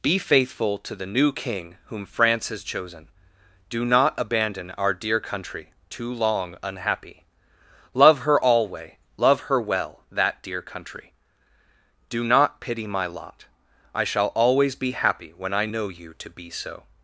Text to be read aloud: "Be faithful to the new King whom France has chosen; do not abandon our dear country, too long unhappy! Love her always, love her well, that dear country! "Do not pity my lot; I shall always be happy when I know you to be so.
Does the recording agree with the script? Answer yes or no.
no